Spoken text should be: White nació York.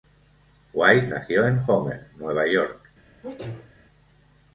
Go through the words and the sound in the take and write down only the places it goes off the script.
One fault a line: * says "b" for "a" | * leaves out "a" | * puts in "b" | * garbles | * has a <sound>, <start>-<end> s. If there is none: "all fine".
* puts in "en Homer Nueva"
* has a sneeze, 3.2-3.7 s